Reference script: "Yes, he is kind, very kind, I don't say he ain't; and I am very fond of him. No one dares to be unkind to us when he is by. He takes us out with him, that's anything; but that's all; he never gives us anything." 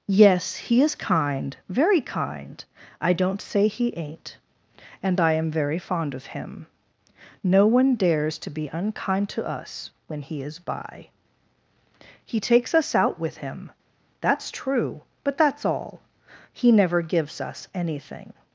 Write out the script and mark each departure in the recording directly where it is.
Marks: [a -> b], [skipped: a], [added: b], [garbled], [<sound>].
"Yes, he is kind, very kind, I don't say he ain't; and I am very fond of him. No one dares to be unkind to us when he is by. He takes us out with him, that's [anything; -> true] but that's all; he never gives us anything."